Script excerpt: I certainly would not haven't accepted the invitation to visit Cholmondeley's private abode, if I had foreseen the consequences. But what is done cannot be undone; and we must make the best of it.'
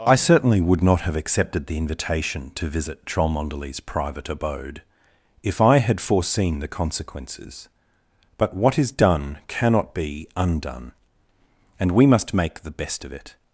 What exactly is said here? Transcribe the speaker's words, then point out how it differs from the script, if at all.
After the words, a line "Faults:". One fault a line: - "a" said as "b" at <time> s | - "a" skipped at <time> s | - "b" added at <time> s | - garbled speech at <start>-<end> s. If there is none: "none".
I certainly would not have accepted the invitation to visit Cholmondeley's private abode, if I had foreseen the consequences. But what is done cannot be undone; and we must make the best of it.'
Faults:
- "haven't" said as "have" at 1.0 s